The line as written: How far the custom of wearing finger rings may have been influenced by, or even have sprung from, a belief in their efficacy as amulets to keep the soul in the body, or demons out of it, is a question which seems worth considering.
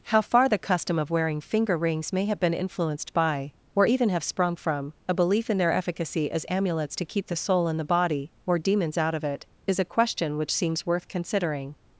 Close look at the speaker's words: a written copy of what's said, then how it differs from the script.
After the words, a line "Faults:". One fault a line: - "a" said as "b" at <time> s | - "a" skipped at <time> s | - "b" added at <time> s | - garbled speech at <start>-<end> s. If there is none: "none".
How far the custom of wearing finger rings may have been influenced by, or even have sprung from, a belief in their efficacy as amulets to keep the soul in the body, or demons out of it, is a question which seems worth considering.
Faults:
none